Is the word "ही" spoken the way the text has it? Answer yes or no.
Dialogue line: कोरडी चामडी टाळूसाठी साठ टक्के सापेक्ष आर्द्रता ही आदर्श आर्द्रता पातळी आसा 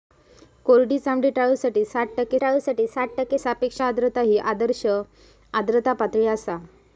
yes